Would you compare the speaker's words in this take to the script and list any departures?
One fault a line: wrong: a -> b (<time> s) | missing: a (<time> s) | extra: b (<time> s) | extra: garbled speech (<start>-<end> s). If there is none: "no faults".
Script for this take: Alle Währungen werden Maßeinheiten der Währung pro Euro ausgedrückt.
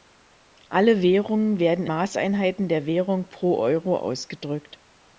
no faults